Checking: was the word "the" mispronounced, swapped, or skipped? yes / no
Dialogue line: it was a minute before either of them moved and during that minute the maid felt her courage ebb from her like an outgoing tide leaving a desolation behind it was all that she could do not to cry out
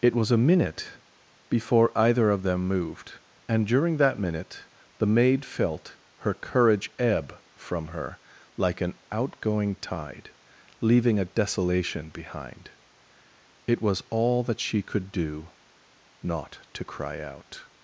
no